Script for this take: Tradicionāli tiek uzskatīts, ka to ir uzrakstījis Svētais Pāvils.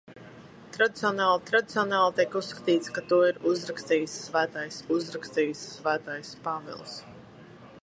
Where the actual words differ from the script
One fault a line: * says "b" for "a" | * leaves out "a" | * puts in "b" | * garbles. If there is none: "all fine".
* puts in "tradicionāli"
* puts in "uzrakstījis Svētais"